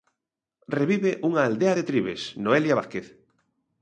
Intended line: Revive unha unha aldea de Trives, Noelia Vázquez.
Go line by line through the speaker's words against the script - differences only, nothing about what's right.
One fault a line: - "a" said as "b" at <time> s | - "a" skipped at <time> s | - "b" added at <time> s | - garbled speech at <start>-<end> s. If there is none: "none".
- "unha" skipped at 1.4 s